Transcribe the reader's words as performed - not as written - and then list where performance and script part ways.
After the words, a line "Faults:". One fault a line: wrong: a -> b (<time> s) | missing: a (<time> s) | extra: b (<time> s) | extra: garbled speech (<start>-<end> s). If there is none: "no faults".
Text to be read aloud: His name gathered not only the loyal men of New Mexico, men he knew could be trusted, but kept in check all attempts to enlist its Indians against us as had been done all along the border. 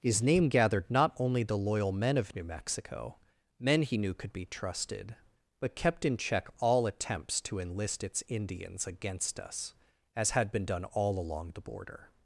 His name gathered not only the loyal men of New Mexico, men he knew could be trusted, but kept in check all attempts to enlist its Indians against us as had been done all along the border.
Faults:
no faults